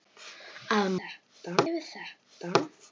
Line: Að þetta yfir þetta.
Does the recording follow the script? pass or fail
pass